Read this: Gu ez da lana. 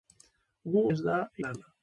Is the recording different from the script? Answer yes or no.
no